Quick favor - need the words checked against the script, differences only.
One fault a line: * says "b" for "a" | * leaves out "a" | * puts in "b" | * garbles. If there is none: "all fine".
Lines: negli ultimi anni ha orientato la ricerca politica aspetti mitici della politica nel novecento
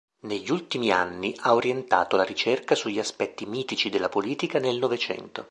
* says "sugli" for "politica"